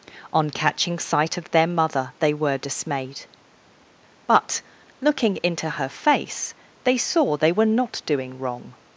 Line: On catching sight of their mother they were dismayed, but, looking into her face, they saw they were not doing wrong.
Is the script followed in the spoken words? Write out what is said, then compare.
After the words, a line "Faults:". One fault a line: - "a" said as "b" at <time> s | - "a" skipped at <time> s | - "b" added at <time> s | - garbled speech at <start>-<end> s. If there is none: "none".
On catching sight of their mother they were dismayed, but, looking into her face, they saw they were not doing wrong.
Faults:
none